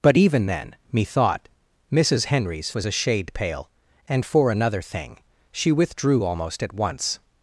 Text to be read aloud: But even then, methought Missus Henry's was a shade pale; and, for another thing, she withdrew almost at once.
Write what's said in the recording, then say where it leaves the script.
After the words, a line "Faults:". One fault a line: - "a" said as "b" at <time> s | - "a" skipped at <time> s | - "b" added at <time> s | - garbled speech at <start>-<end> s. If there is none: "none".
But even then, methought Missus Henry's was a shade pale; and, for another thing, she withdrew almost at once.
Faults:
none